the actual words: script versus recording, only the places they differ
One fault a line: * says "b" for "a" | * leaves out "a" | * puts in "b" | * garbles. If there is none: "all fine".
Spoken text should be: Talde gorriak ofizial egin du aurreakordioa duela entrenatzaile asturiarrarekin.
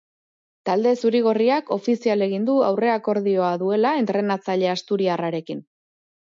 * puts in "zuri"